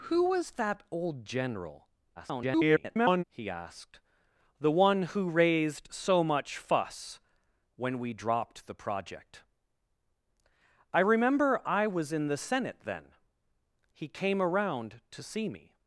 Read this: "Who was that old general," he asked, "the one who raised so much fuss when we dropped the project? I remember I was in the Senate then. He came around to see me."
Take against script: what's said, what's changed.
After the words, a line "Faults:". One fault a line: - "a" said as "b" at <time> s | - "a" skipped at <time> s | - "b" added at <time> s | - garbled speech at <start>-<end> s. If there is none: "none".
"Who was that old general," [garbled] he asked, "the one who raised so much fuss when we dropped the project? I remember I was in the Senate then. He came around to see me."
Faults:
- garbled speech at 2.2-3.2 s